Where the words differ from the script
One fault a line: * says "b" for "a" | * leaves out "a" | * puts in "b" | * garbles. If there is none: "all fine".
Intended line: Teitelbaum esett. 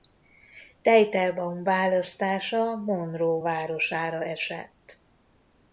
* puts in "választása Monroe városára"